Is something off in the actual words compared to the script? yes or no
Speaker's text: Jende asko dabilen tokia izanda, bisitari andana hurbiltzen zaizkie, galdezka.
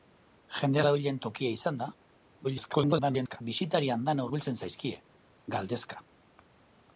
yes